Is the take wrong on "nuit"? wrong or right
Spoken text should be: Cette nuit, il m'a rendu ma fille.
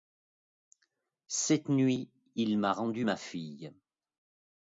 right